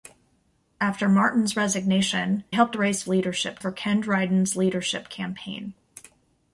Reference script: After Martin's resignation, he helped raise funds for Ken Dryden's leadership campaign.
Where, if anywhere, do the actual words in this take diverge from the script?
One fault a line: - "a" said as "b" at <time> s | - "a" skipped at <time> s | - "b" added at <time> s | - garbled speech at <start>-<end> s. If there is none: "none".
- "he" skipped at 2.4 s
- "funds" said as "leadership" at 3.1 s